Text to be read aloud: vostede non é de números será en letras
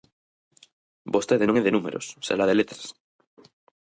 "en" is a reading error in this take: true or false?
true